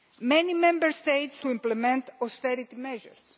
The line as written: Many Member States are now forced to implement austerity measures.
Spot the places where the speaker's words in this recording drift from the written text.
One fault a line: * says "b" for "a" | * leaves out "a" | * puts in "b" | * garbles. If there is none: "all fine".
* leaves out "are now forced"